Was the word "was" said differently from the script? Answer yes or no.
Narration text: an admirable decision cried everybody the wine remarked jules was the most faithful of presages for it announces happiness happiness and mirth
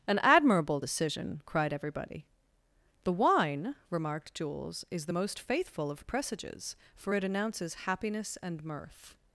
yes